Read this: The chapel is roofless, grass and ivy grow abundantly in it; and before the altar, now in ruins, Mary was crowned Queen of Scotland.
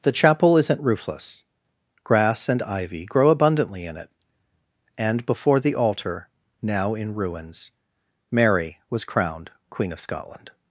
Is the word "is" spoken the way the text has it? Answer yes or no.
no